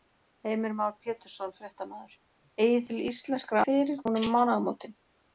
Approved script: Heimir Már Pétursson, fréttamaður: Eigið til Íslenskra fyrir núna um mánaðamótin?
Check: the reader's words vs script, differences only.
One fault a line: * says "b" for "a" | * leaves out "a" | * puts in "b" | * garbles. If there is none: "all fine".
all fine